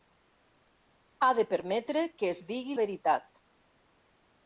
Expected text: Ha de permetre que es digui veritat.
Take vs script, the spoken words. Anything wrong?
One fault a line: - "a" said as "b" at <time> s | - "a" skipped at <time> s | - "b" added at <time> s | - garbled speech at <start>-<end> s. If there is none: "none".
none